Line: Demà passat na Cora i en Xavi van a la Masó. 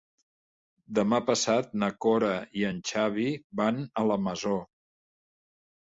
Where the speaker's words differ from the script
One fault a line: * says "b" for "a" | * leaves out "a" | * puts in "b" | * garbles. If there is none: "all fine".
all fine